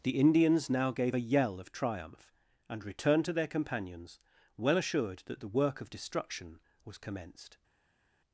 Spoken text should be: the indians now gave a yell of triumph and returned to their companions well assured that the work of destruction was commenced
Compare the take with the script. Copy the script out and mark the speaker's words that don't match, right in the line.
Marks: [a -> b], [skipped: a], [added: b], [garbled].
the indians now gave a yell of triumph and returned to their companions well assured that the work of destruction was commenced